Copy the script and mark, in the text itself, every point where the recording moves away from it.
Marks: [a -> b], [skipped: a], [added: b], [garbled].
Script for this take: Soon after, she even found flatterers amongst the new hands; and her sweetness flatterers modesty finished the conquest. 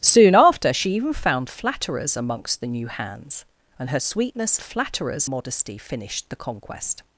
Soon after, she even found flatterers amongst the new hands; and her sweetness flatterers modesty finished the conquest.